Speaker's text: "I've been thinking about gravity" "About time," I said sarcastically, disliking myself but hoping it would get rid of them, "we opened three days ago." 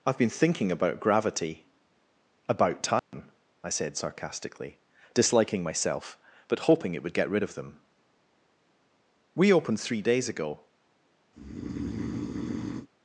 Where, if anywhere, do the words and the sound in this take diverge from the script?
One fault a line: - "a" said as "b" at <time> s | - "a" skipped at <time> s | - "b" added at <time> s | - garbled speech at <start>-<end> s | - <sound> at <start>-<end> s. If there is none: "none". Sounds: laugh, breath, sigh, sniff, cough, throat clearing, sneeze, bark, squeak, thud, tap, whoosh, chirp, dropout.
- dropout at 3.0-3.1 s
- breath at 11.3-12.9 s